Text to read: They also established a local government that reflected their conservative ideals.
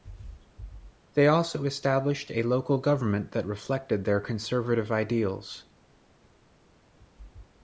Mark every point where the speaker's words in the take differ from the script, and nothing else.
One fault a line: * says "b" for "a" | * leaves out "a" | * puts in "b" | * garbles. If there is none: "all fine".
all fine